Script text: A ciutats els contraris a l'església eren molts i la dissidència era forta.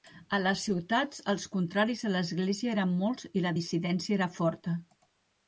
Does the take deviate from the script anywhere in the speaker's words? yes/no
yes